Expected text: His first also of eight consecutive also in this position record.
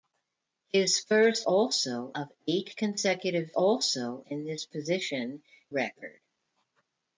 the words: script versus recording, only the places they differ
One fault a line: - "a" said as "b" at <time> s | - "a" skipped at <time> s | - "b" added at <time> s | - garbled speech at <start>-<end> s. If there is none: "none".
none